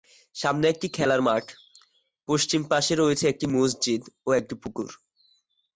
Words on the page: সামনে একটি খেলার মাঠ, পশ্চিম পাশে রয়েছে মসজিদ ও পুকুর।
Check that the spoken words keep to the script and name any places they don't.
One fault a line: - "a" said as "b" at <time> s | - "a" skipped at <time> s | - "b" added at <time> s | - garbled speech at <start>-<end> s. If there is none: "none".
- "একটি" added at 3.3 s
- "একটি" added at 4.3 s